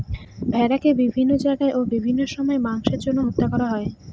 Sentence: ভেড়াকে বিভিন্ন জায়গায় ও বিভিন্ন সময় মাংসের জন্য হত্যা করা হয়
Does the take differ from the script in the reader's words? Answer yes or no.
no